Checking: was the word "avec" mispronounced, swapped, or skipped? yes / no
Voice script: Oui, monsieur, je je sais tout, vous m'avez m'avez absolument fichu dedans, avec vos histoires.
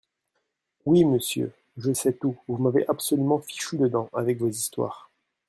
no